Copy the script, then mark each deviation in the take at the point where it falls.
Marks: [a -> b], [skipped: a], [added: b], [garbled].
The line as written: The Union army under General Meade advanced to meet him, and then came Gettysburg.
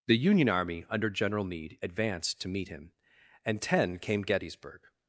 The Union army under General Meade advanced to meet him, and [then -> ten] came Gettysburg.